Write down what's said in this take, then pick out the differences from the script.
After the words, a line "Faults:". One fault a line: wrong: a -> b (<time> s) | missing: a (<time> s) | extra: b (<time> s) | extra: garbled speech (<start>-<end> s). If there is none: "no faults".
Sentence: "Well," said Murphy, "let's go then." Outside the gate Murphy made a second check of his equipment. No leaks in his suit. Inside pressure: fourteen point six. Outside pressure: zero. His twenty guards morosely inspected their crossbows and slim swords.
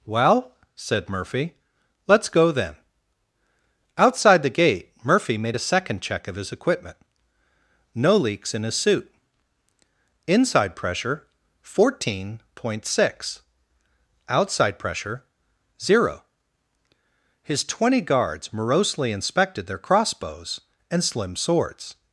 "Well," said Murphy, "let's go then." Outside the gate Murphy made a second check of his equipment. No leaks in his suit. Inside pressure: fourteen point six. Outside pressure: zero. His twenty guards morosely inspected their crossbows and slim swords.
Faults:
no faults